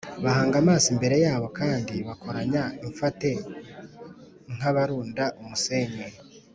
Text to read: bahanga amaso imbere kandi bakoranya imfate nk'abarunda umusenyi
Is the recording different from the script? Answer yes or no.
yes